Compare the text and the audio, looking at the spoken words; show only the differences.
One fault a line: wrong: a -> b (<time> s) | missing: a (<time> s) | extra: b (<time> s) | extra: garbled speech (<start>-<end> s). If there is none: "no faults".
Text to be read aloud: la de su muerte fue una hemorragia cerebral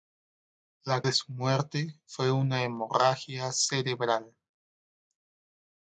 no faults